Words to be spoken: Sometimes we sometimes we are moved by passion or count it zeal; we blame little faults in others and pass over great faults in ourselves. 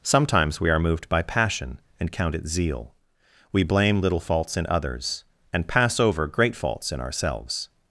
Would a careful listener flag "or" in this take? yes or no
yes